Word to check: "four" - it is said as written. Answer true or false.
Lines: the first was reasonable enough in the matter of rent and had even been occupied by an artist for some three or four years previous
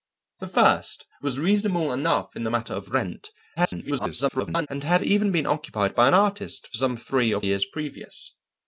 false